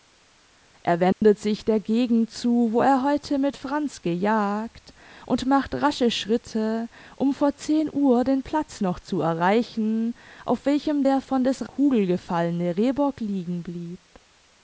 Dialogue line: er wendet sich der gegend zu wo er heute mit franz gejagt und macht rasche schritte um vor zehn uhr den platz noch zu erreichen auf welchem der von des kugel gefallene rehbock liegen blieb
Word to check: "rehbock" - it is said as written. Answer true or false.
true